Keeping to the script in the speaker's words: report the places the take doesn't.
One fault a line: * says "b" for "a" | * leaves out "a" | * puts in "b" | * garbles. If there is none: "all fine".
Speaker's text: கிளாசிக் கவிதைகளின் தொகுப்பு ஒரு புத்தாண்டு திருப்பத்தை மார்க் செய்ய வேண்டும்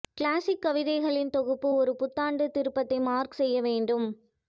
all fine